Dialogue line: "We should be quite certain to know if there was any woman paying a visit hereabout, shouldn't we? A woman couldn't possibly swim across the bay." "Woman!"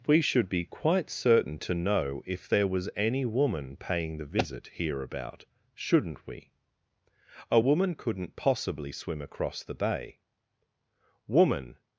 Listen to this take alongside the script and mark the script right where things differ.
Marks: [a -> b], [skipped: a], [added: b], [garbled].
"We should be quite certain to know if there was any woman paying [a -> the] visit hereabout, shouldn't we? A woman couldn't possibly swim across the bay." "Woman!"